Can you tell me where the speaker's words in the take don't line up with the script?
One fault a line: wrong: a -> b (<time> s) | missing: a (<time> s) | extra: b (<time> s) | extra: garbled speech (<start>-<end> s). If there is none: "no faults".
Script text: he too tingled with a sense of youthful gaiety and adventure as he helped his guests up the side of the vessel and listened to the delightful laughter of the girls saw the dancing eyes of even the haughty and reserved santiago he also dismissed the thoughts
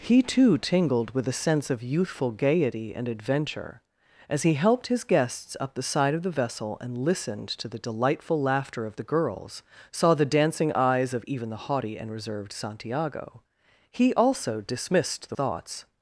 no faults